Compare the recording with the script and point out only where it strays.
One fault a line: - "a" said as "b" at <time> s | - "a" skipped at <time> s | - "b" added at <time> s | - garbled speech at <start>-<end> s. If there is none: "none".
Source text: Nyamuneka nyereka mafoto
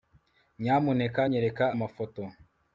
none